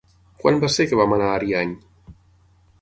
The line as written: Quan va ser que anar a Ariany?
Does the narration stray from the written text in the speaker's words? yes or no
yes